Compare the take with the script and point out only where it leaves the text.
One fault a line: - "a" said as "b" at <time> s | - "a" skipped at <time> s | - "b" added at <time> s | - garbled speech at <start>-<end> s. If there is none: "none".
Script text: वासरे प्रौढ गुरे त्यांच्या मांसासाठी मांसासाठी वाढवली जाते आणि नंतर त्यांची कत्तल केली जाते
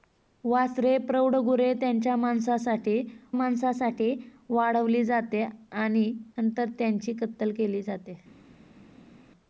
none